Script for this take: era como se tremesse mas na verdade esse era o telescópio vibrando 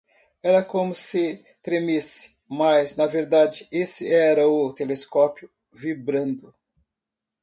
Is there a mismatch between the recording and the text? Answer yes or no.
no